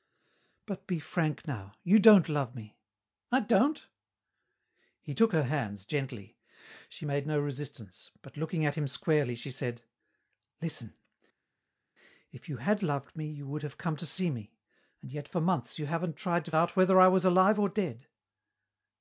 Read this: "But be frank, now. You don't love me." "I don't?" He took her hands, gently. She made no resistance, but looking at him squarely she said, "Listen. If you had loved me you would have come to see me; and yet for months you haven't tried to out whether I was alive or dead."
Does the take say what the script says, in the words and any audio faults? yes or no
yes